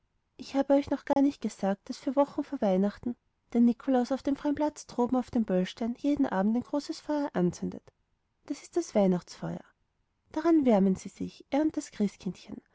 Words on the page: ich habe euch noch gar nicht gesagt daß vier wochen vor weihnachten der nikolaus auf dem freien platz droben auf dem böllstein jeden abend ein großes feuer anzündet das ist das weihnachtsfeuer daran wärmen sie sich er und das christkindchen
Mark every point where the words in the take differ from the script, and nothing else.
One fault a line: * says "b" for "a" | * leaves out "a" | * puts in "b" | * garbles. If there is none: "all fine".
all fine